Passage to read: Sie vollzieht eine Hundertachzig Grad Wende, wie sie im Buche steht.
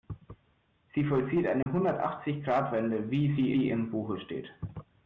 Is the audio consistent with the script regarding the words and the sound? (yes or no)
no